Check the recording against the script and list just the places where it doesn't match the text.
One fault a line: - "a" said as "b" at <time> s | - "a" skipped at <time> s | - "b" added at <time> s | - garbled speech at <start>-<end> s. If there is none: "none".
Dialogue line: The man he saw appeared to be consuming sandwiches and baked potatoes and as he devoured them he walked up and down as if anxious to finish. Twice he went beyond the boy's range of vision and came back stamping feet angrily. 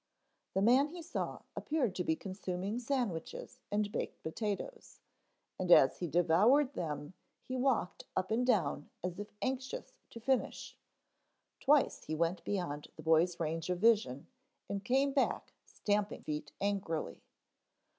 none